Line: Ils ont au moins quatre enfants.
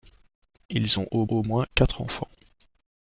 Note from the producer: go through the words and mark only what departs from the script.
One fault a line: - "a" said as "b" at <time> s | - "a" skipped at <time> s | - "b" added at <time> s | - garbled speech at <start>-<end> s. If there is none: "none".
- "au" added at 1.3 s